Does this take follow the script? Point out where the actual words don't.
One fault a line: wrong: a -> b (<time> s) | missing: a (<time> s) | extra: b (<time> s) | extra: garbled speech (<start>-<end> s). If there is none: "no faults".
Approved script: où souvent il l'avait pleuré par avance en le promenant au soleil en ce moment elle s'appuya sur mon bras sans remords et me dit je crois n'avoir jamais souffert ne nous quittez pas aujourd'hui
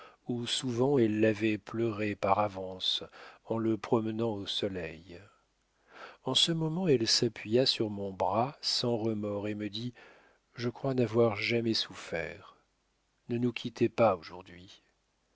wrong: il -> elle (0.9 s)